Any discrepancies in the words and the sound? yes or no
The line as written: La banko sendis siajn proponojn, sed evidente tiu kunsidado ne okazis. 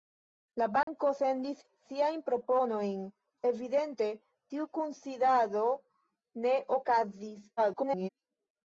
yes